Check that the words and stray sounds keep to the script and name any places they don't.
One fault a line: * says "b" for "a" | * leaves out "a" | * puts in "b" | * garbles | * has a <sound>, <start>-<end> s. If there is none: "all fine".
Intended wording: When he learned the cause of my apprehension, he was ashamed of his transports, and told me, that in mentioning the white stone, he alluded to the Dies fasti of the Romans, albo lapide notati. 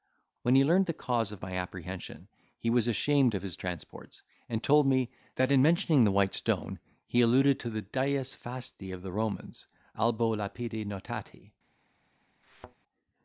* has a thud, 12.4-12.8 s